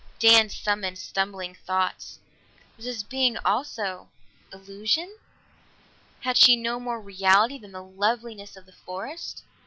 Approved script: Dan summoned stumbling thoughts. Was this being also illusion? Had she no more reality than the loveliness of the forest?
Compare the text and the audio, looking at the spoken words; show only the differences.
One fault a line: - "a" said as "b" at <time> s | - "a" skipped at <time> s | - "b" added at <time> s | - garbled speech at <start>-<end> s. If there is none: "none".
none